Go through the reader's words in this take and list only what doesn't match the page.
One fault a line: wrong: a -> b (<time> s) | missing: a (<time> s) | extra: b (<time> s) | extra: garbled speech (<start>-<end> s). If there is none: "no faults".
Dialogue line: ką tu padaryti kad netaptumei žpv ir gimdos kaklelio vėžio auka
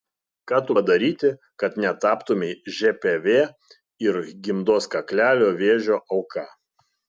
no faults